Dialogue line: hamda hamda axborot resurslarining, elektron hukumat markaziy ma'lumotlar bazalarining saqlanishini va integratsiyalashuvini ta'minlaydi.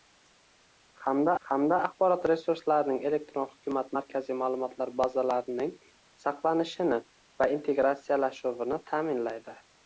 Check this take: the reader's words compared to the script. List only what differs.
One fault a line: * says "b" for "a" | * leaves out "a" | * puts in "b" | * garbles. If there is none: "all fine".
all fine